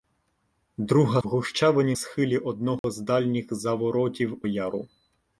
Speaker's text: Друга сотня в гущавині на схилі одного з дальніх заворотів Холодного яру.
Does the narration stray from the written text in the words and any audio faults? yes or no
yes